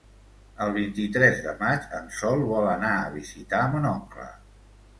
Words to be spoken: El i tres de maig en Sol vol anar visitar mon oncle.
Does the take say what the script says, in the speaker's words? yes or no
no